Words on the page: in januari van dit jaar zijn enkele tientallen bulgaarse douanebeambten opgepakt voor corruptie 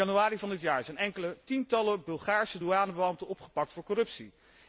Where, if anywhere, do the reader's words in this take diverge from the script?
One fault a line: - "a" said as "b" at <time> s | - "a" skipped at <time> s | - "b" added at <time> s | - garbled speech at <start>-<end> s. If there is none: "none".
none